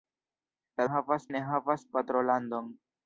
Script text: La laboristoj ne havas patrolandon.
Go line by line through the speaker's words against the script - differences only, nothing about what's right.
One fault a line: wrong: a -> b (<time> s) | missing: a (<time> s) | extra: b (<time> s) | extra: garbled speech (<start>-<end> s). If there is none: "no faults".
wrong: laboristoj -> havas (0.9 s)